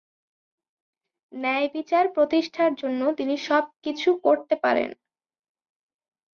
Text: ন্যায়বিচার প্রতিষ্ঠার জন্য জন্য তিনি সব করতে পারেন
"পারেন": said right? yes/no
yes